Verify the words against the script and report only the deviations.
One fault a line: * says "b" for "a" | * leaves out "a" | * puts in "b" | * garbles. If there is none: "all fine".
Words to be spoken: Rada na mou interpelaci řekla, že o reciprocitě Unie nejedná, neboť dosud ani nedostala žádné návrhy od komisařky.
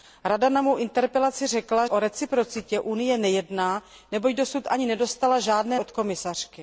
* leaves out "že"
* leaves out "návrhy"